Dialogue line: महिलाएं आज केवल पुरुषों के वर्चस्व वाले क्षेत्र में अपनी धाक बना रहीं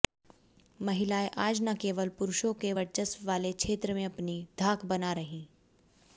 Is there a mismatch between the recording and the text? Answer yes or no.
yes